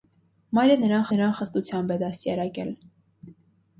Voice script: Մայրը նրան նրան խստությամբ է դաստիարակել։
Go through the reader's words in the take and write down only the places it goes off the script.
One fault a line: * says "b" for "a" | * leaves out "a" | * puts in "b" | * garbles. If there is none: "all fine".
all fine